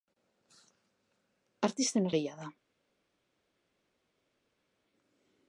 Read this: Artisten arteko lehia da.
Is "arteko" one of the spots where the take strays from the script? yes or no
yes